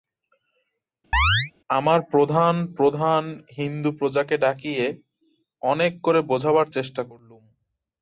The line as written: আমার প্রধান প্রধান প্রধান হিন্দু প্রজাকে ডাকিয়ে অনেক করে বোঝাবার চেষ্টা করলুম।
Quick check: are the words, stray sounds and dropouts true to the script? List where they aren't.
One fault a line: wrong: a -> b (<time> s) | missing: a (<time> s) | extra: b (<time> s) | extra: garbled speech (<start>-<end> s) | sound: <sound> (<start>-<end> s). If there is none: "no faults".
sound: chirp (1.1-1.5 s)
missing: প্রধান (3.2 s)